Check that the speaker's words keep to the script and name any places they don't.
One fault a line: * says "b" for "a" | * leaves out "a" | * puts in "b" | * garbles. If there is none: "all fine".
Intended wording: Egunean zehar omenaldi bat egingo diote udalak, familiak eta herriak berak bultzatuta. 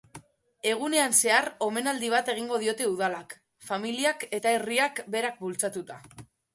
all fine